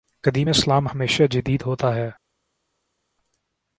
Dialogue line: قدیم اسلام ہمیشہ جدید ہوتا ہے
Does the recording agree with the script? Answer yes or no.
yes